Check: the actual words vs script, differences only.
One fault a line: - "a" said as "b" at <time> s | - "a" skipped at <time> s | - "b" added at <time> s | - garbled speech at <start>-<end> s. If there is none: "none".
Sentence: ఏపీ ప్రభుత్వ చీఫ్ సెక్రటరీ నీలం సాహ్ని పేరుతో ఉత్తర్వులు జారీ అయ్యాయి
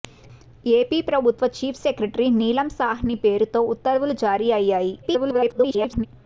- garbled speech at 5.0-6.1 s